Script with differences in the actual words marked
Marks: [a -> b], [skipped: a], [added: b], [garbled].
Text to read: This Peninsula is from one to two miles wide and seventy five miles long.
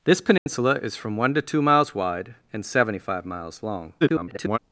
This Peninsula is from one to two miles wide and seventy five miles long. [garbled]